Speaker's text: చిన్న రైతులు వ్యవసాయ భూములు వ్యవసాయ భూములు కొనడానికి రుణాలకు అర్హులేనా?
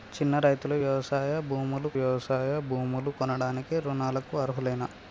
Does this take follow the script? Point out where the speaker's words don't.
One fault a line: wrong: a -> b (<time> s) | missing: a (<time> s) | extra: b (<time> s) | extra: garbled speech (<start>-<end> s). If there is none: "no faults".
no faults